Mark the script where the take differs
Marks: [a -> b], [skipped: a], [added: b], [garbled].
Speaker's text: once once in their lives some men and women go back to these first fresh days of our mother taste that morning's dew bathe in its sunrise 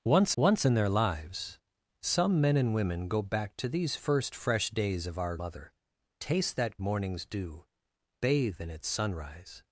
once once in their lives some men and women go back to these first fresh days of our mother taste that morning's dew bathe in its sunrise